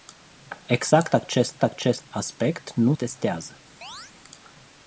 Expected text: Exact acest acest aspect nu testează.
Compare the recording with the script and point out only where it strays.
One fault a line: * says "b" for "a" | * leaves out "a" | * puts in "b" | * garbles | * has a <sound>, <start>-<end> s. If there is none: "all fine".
* has a chirp, 3.8-4.1 s